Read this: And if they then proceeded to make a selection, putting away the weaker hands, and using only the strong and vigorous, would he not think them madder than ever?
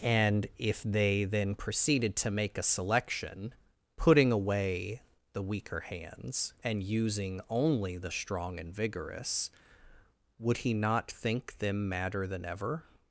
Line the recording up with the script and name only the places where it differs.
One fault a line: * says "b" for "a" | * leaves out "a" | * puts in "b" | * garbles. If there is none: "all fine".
all fine